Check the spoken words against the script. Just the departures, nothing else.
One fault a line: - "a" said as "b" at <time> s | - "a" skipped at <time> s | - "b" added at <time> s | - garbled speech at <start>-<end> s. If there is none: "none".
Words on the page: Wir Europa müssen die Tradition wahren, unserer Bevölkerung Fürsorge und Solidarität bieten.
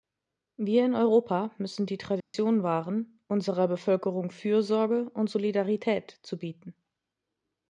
- "in" added at 0.8 s
- "zu" added at 6.2 s